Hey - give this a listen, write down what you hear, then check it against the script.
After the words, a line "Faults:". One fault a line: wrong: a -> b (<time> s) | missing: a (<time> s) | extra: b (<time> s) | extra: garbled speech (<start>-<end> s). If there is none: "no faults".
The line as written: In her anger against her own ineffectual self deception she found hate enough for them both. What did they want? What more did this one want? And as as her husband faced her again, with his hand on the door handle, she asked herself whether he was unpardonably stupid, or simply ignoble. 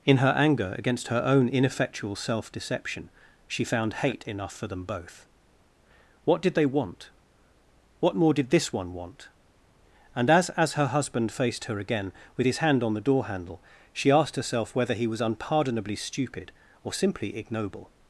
In her anger against her own ineffectual self deception she found hate enough for them both. What did they want? What more did this one want? And as as her husband faced her again, with his hand on the door handle, she asked herself whether he was unpardonably stupid, or simply ignoble.
Faults:
no faults